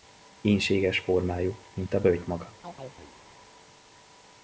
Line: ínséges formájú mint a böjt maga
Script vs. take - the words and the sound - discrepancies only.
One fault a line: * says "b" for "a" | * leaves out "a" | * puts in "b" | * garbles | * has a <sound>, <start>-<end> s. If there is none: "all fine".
* has a chirp, 2.6-3.1 s